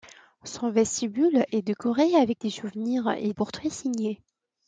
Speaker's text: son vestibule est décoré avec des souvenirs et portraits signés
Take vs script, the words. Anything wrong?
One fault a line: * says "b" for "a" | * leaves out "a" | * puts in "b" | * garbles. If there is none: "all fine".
all fine